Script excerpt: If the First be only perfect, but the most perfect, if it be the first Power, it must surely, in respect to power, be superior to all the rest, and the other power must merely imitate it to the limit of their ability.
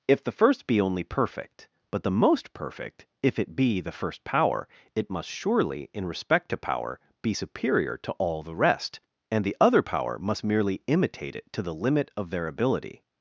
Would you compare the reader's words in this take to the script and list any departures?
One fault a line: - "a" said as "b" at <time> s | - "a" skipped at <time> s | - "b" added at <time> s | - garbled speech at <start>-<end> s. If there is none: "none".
none